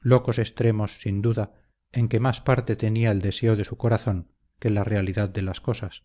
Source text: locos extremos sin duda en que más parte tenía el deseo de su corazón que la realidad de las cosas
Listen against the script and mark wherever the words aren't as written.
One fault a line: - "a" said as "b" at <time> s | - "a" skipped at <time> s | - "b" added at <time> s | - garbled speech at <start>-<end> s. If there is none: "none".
none